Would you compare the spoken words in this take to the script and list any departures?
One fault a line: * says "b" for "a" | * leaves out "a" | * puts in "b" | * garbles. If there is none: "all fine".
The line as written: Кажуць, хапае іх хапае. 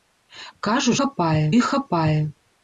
all fine